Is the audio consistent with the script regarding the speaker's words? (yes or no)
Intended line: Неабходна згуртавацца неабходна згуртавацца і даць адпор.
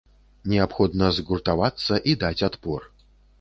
no